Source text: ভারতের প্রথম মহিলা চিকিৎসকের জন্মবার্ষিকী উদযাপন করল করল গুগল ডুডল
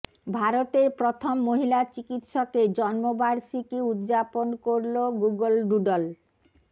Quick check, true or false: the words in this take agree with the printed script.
false